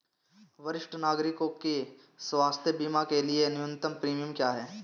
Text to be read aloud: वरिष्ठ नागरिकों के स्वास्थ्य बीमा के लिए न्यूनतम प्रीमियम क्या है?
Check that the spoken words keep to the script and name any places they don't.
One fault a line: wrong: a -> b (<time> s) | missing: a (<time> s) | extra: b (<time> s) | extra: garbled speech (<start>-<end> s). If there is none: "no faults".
no faults